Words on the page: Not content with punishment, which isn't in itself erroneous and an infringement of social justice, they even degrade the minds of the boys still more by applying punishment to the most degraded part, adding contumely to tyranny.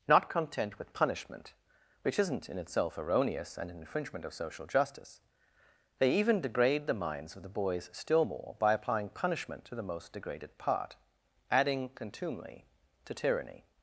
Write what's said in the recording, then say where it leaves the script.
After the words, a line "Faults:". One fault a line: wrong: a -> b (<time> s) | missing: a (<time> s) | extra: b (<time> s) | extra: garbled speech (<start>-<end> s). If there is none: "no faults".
Not content with punishment, which isn't in itself erroneous and an infringement of social justice, they even degrade the minds of the boys still more by applying punishment to the most degraded part, adding contumely to tyranny.
Faults:
no faults